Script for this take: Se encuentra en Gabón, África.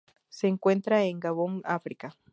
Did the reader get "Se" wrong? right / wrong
right